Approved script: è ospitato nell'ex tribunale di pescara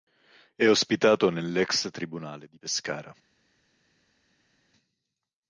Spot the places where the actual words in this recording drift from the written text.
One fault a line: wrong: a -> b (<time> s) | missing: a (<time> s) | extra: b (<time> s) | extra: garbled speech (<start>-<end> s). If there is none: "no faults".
no faults